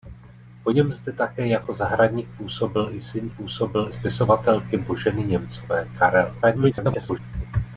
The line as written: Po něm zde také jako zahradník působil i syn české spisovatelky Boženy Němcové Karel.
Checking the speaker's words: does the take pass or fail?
fail